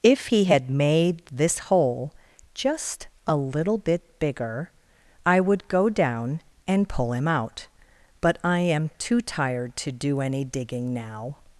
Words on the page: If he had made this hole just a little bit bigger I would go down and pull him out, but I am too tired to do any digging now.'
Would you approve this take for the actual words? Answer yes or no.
yes